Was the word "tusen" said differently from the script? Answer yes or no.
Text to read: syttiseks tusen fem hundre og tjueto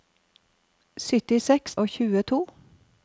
yes